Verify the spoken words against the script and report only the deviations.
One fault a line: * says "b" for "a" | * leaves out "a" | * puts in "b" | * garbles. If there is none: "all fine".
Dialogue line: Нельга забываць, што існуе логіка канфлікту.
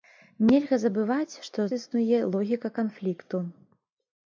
all fine